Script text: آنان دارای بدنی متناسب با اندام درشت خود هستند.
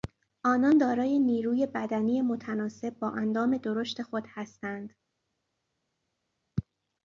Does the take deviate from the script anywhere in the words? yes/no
yes